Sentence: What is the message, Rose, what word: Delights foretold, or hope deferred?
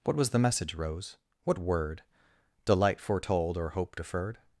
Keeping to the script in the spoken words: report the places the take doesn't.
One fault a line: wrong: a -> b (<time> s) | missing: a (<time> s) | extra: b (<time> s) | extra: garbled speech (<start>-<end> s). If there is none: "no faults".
wrong: is -> was (0.1 s)
wrong: Delights -> Delight (2.6 s)